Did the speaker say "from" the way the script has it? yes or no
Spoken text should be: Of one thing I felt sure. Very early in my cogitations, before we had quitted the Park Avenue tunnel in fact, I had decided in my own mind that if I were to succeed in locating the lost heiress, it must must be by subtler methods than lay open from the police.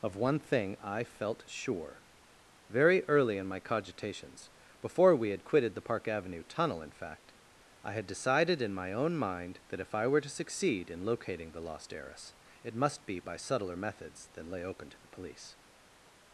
no